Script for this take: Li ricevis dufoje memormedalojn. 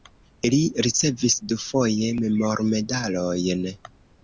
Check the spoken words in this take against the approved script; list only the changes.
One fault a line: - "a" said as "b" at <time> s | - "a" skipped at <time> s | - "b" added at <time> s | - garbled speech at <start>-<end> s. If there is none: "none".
none